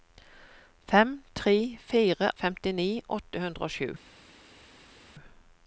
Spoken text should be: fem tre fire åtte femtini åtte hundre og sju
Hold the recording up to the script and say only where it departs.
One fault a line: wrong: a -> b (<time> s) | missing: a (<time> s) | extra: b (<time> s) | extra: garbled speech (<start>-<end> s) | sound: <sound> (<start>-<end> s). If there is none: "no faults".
missing: åtte (2.3 s)